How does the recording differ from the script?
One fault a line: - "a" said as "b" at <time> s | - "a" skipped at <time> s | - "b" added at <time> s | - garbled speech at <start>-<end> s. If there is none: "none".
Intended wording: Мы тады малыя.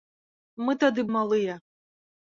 none